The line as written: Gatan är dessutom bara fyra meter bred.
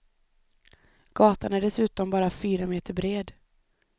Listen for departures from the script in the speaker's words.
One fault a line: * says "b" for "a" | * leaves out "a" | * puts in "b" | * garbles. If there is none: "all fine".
all fine